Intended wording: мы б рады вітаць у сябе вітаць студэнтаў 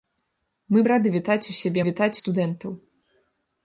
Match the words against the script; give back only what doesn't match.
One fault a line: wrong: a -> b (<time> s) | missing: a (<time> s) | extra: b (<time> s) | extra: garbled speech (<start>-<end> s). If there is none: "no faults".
no faults